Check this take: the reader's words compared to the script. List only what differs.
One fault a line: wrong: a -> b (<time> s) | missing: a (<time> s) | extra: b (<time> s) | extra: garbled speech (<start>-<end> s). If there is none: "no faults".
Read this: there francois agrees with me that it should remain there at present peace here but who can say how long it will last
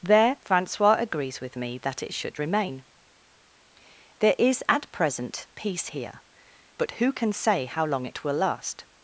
extra: is (4.4 s)